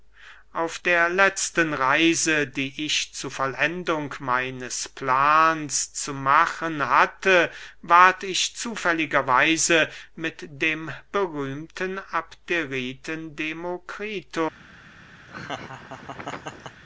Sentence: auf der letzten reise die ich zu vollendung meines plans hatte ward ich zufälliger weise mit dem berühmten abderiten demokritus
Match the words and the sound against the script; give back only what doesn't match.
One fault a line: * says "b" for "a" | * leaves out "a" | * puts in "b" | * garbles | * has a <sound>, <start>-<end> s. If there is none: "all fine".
* puts in "zu machen"
* has a laugh, 15.3-16.8 s